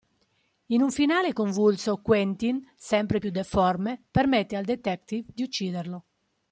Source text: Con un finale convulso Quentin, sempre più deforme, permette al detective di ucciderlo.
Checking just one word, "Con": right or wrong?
wrong